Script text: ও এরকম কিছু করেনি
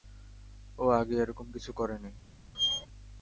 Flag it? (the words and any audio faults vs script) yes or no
yes